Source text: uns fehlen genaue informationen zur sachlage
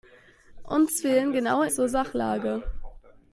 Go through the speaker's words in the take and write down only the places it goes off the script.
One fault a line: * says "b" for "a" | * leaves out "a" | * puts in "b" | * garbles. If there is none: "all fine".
* leaves out "informationen"